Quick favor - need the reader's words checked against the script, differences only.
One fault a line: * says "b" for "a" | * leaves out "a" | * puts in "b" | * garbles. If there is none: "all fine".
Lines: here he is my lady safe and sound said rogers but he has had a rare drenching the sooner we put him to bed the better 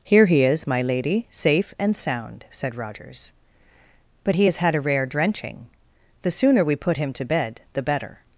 all fine